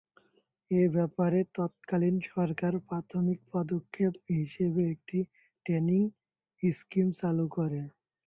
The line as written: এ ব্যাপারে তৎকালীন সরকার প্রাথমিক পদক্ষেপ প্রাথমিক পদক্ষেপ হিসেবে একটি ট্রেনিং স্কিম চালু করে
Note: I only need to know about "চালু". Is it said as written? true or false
true